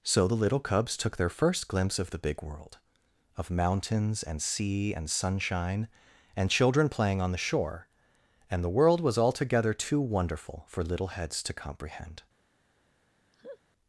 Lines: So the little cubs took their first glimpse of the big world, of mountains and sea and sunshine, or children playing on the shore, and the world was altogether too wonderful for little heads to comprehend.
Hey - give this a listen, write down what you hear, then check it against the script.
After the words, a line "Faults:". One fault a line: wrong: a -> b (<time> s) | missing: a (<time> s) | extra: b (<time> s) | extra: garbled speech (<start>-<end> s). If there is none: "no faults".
So the little cubs took their first glimpse of the big world, of mountains and sea and sunshine, and children playing on the shore, and the world was altogether too wonderful for little heads to comprehend.
Faults:
wrong: or -> and (6.3 s)